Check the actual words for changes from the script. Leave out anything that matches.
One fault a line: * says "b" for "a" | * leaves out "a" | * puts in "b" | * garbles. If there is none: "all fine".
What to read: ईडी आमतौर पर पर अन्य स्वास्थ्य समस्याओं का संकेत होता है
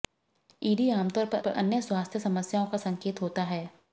all fine